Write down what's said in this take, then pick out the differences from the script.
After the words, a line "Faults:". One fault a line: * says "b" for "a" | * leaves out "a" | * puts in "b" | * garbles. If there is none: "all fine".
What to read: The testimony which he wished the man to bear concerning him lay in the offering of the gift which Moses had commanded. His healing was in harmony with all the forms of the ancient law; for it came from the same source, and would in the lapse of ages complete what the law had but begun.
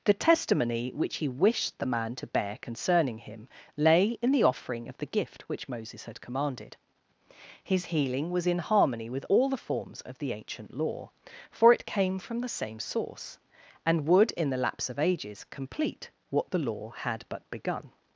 The testimony which he wished the man to bear concerning him lay in the offering of the gift which Moses had commanded. His healing was in harmony with all the forms of the ancient law; for it came from the same source, and would in the lapse of ages complete what the law had but begun.
Faults:
all fine